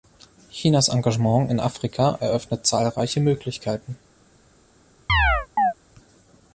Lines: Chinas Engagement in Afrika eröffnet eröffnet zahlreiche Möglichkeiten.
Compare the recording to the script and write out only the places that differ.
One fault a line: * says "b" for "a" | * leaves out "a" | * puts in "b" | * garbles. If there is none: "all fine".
* leaves out "eröffnet"